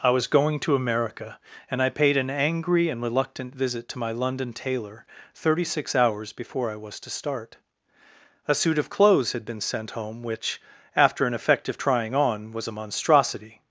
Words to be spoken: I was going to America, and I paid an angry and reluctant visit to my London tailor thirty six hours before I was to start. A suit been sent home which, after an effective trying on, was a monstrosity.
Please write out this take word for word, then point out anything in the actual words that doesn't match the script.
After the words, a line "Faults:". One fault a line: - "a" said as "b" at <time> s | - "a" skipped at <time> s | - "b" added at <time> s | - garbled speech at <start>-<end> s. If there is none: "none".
I was going to America, and I paid an angry and reluctant visit to my London tailor thirty six hours before I was to start. A suit of clothes had been sent home which, after an effective trying on, was a monstrosity.
Faults:
- "of clothes had" added at 8.8 s